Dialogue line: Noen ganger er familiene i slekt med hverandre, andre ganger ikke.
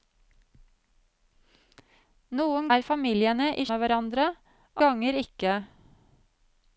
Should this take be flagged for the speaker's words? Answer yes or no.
yes